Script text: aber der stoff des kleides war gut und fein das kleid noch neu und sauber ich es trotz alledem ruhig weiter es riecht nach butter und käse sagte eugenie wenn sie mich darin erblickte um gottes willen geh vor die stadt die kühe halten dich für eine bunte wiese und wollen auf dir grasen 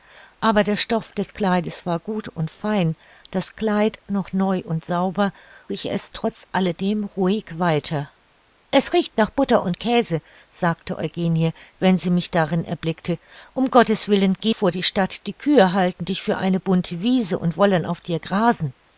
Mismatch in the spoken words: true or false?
false